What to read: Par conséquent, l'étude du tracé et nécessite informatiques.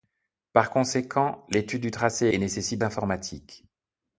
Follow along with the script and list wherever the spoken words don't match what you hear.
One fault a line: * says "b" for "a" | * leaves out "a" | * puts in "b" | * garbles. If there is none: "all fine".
all fine